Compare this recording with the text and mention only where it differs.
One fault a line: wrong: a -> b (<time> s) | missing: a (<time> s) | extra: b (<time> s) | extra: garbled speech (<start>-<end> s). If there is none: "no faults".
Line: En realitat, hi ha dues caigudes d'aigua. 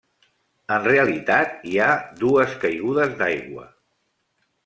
no faults